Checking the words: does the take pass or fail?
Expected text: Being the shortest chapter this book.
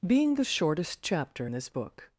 pass